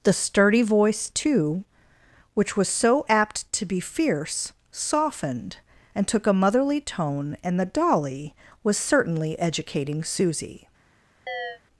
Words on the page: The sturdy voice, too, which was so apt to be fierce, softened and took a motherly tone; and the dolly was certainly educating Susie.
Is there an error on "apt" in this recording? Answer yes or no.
no